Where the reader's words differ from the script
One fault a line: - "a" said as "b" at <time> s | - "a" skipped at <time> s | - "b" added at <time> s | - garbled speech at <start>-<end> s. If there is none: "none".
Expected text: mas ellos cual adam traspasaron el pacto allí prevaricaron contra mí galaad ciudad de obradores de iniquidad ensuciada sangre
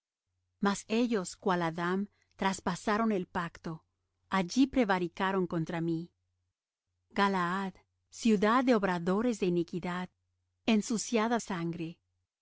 none